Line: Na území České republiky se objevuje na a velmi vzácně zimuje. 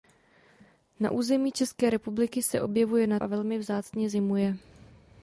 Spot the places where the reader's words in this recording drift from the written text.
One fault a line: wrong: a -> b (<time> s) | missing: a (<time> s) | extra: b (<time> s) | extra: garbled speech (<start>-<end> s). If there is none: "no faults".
no faults